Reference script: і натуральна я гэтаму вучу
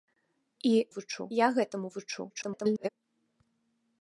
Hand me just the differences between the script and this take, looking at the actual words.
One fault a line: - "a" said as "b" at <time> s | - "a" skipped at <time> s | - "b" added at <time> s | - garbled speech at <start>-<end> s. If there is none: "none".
- "натуральна" said as "вучу" at 1.0 s
- garbled speech at 2.3-2.9 s